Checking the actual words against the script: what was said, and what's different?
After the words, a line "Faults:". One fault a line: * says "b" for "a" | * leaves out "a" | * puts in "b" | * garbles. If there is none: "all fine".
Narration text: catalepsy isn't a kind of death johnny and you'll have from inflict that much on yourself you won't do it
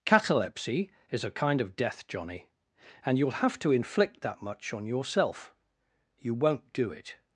catalepsy is a kind of death johnny and you'll have to inflict that much on yourself you won't do it
Faults:
* says "is" for "isn't"
* says "to" for "from"